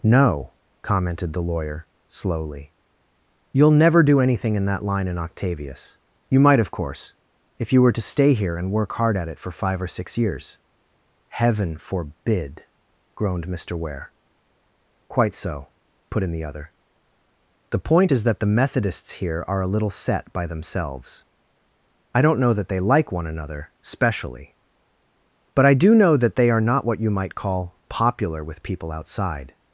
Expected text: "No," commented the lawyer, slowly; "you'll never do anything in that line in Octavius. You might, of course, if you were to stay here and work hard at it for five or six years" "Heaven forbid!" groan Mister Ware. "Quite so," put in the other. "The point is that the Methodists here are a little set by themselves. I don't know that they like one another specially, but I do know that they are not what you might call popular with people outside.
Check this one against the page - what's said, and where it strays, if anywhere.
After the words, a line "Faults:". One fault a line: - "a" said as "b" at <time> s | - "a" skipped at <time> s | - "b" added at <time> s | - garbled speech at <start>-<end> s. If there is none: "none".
"No," commented the lawyer, slowly; "you'll never do anything in that line in Octavius. You might, of course, if you were to stay here and work hard at it for five or six years" "Heaven forbid!" groaned Mister Ware. "Quite so," put in the other. "The point is that the Methodists here are a little set by themselves. I don't know that they like one another specially, but I do know that they are not what you might call popular with people outside.
Faults:
- "groan" said as "groaned" at 13.1 s